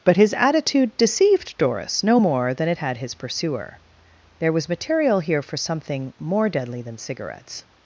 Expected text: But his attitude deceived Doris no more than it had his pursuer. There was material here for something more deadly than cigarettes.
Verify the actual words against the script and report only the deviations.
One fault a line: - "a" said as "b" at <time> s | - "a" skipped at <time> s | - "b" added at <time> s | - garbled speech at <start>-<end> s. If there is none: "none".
none